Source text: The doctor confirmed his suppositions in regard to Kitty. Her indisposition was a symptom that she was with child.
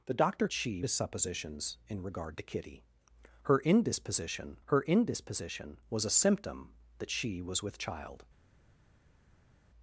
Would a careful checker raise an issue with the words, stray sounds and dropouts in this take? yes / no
yes